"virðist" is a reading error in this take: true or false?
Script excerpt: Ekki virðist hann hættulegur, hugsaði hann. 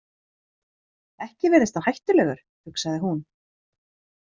false